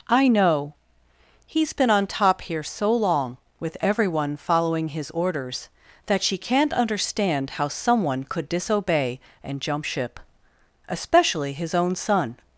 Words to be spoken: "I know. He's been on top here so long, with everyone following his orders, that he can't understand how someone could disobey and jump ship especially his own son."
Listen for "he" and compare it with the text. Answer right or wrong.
wrong